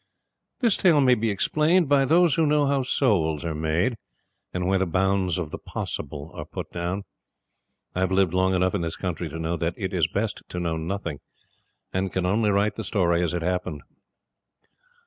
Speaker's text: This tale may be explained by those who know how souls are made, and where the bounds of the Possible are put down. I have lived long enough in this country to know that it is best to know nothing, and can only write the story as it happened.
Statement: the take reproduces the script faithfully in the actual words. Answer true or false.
true